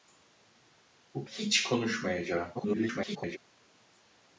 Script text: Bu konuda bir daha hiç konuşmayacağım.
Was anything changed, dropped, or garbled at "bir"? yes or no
yes